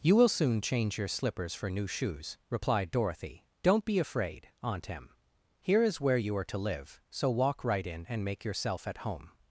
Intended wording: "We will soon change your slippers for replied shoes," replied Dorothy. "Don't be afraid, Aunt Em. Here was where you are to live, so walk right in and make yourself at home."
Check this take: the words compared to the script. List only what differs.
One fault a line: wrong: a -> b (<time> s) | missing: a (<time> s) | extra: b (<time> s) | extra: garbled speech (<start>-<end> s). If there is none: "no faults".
wrong: We -> You (0.0 s)
wrong: replied -> new (1.7 s)
wrong: was -> is (5.8 s)